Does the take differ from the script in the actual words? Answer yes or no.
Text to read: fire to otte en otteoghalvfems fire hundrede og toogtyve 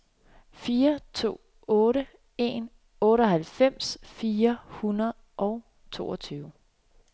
no